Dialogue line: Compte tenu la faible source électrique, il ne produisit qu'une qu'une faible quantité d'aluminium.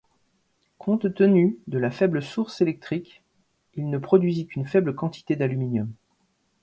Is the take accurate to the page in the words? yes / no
no